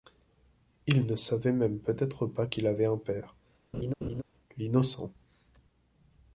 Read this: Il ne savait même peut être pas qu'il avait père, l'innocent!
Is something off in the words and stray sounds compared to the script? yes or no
yes